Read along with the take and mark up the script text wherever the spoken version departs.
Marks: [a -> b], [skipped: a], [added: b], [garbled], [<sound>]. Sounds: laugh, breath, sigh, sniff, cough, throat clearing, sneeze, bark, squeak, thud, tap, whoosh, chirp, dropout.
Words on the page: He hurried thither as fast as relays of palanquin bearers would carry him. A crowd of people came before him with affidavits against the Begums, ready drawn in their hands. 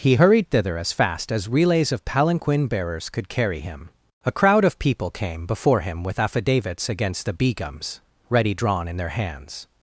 He hurried thither as fast as relays of palanquin bearers [would -> could] carry him. A crowd of people came before him with affidavits against the Begums, ready drawn in their hands.